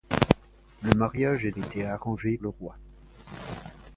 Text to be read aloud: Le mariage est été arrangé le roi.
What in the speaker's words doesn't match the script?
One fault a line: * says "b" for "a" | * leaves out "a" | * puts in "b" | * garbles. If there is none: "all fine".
all fine